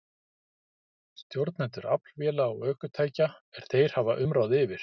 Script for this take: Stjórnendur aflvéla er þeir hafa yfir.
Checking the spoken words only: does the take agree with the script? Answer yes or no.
no